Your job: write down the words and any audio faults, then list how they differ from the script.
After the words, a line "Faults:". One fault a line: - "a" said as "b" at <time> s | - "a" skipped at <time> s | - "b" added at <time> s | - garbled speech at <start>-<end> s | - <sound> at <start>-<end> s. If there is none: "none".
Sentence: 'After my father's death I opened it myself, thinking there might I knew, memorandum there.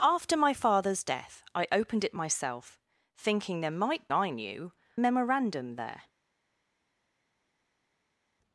'After my father's death I opened it myself, thinking there might I knew, memorandum there.
Faults:
none